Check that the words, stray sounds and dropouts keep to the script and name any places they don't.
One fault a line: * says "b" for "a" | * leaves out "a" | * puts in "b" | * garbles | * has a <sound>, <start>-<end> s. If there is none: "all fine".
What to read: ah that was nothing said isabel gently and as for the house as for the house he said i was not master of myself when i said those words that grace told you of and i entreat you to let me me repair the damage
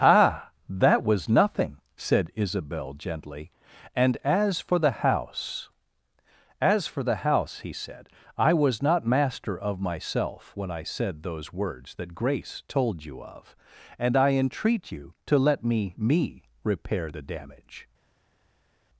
all fine